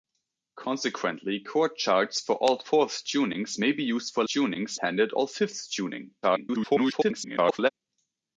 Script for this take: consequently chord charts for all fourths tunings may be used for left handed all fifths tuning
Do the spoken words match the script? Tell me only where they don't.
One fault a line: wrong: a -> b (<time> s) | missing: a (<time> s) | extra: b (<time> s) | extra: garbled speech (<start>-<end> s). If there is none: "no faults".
wrong: left -> tunings (4.2 s)
extra: garbled speech (6.2-7.7 s)